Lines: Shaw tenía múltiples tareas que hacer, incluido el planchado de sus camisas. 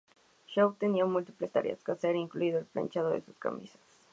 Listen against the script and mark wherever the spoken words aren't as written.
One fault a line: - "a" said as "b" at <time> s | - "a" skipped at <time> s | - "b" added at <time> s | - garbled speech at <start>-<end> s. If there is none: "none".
none